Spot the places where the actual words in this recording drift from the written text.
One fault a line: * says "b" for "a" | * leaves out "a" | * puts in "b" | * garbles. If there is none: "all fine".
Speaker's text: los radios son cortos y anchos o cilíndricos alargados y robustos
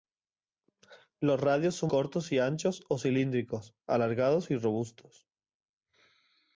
all fine